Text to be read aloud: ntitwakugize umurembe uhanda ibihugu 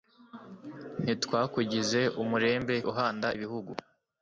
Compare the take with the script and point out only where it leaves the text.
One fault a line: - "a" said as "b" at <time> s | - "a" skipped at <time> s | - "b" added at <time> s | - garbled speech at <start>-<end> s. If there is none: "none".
none